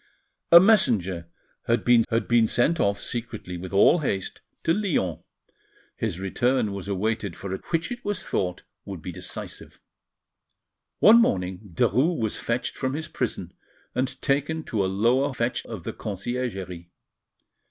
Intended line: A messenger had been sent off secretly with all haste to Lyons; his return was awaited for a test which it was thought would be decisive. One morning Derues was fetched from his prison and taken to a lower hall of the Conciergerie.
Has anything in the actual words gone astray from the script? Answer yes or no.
yes